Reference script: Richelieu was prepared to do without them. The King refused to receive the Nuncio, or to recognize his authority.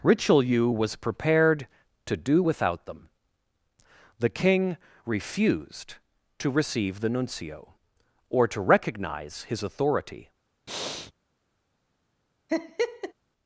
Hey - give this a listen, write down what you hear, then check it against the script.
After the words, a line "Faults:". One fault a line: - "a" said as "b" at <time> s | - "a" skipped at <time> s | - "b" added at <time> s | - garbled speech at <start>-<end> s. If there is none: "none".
Richelieu was prepared to do without them. The King refused to receive the Nuncio, or to recognize his authority.
Faults:
none